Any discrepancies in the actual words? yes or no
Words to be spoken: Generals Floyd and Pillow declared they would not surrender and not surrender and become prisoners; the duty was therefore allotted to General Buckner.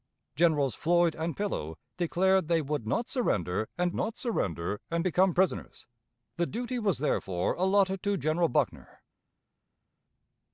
no